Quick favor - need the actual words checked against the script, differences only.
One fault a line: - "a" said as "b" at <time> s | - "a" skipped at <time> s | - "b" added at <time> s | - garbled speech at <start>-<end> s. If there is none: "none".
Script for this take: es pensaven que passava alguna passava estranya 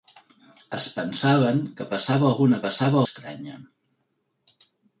none